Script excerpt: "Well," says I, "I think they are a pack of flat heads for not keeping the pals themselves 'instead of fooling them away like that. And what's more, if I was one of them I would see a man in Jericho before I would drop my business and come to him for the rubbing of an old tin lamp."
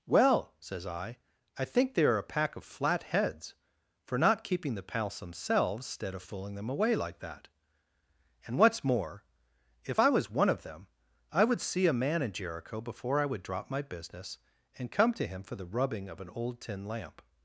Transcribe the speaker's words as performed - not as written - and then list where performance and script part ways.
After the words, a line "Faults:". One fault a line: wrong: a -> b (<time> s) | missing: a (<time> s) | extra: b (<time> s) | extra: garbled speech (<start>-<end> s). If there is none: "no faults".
"Well," says I, "I think they are a pack of flat heads for not keeping the pals themselves 'instead of fooling them away like that. And what's more, if I was one of them I would see a man in Jericho before I would drop my business and come to him for the rubbing of an old tin lamp."
Faults:
no faults